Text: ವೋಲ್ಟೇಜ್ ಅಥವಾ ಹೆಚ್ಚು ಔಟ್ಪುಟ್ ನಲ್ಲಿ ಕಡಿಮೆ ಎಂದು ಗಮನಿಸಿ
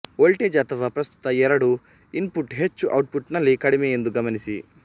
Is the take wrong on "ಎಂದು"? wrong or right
right